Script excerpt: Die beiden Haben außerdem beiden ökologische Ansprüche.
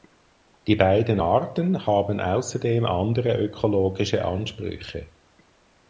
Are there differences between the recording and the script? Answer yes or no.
yes